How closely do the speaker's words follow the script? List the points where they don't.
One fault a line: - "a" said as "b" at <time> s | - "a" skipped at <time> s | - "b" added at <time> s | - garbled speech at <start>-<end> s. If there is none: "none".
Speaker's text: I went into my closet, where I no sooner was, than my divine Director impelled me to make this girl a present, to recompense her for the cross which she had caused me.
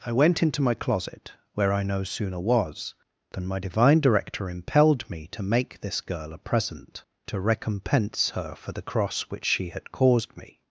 none